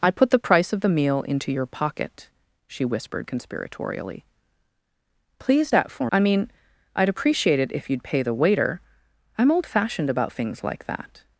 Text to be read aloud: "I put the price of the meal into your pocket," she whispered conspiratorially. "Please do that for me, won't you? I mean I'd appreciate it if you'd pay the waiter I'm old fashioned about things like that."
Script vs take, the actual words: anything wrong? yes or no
yes